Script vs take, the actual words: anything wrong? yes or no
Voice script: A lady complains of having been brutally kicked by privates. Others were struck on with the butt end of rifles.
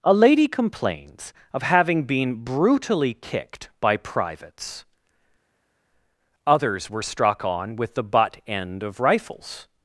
no